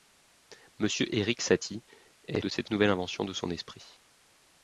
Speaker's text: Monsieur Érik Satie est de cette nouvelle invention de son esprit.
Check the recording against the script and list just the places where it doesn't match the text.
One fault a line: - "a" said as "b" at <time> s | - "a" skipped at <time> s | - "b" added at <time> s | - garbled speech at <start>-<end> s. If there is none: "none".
none